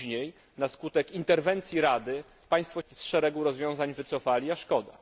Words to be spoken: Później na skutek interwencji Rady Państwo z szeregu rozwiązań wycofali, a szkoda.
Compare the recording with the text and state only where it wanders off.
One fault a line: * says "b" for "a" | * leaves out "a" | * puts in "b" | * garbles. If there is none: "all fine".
all fine